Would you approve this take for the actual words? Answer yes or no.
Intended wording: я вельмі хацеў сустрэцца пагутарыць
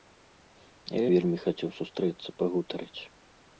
yes